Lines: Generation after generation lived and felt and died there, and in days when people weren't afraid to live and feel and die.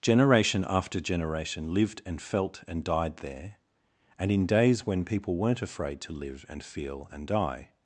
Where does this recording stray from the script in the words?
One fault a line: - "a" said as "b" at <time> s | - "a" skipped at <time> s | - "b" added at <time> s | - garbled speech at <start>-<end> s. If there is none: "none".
none